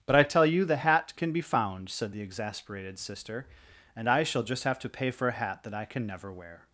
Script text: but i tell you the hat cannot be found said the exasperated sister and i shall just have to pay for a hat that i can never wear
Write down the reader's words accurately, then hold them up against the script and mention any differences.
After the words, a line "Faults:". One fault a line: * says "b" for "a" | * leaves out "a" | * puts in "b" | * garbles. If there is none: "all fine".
but i tell you the hat can be found said the exasperated sister and i shall just have to pay for a hat that i can never wear
Faults:
* says "can" for "cannot"